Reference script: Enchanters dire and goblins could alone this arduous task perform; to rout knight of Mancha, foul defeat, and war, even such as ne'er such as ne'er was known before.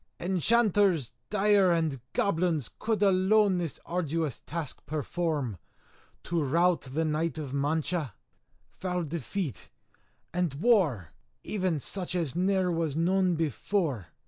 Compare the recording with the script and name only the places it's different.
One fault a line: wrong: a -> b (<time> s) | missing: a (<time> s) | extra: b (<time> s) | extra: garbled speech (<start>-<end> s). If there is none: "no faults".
extra: the (6.8 s)
missing: such as ne'er (12.7 s)